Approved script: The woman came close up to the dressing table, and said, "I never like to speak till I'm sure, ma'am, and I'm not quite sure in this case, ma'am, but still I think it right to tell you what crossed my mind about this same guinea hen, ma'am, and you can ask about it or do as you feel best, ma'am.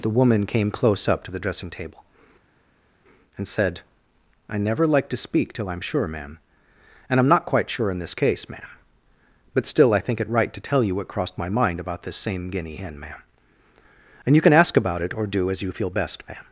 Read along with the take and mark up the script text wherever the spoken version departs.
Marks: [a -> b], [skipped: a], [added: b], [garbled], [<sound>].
The woman came close up to the dressing table, and said, "I never like to speak till I'm sure, ma'am, and I'm not quite sure in this case, ma'am, but still I think it right to tell you what crossed my mind about this same guinea hen, ma'am, and you can ask about it or do as you feel best, ma'am.